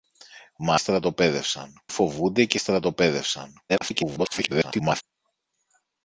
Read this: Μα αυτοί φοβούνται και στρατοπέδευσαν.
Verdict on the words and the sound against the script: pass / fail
fail